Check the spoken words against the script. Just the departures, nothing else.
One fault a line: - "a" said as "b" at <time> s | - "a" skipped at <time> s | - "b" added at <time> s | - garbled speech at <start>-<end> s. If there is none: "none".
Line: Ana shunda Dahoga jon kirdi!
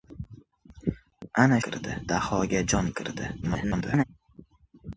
- "shunda" said as "kirdi" at 1.7 s
- garbled speech at 3.4-4.0 s